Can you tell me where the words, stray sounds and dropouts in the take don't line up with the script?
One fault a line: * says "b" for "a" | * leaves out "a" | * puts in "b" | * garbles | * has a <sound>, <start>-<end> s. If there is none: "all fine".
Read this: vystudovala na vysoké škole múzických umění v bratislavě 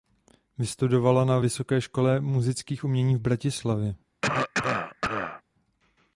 * has a cough, 4.2-5.4 s